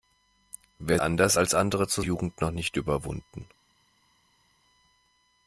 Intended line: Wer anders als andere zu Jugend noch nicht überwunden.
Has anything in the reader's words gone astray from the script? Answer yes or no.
no